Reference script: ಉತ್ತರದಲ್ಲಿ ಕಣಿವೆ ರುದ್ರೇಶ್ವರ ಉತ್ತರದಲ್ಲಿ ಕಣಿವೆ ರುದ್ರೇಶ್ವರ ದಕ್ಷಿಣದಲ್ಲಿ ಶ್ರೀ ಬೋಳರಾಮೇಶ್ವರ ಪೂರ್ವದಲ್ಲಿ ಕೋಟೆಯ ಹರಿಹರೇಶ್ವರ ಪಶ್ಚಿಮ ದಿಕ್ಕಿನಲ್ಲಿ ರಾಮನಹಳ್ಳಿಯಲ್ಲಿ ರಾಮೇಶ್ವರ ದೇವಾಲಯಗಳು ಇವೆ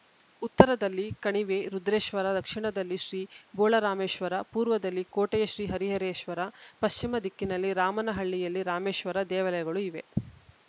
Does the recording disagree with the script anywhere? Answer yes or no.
yes